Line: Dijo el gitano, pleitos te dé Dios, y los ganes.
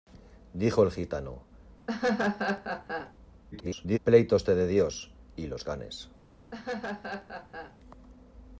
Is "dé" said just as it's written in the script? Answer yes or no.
yes